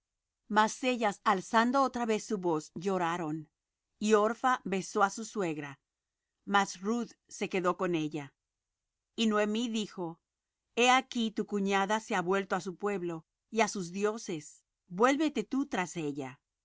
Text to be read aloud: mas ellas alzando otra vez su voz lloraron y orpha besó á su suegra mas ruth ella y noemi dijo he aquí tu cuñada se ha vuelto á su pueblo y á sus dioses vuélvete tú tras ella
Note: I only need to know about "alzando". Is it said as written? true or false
true